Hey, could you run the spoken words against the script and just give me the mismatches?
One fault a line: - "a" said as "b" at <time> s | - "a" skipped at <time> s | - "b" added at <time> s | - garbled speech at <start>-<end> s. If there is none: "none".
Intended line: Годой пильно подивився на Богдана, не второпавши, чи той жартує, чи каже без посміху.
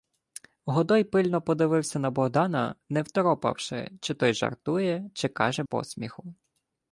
- "без" skipped at 5.6 s